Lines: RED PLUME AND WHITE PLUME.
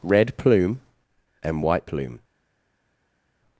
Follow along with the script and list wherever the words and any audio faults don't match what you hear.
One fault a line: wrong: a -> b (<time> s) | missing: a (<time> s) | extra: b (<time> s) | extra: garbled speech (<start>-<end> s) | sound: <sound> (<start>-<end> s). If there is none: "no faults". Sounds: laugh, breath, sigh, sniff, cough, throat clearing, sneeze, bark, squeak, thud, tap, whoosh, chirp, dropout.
no faults